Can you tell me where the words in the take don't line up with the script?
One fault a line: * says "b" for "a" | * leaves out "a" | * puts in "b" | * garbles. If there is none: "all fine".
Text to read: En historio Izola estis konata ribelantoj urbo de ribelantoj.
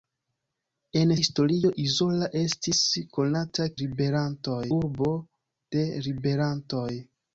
all fine